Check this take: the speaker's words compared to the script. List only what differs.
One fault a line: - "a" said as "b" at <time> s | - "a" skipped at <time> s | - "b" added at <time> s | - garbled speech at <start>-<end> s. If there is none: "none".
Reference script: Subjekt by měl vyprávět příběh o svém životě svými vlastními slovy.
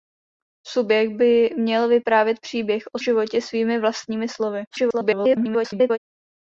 - "svém" skipped at 3.0 s
- garbled speech at 4.7-6.0 s